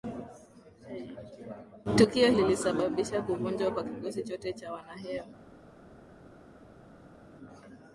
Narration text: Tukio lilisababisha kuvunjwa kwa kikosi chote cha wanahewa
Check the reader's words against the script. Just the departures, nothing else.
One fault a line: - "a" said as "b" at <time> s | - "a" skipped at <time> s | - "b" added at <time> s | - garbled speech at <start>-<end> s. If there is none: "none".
none